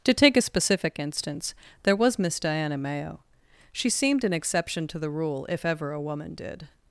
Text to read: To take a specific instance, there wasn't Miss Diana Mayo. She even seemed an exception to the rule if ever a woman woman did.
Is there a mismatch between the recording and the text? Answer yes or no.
yes